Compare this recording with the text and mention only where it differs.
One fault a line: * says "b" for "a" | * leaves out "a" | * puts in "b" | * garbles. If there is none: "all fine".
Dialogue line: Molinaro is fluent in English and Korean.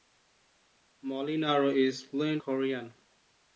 * leaves out "in English and"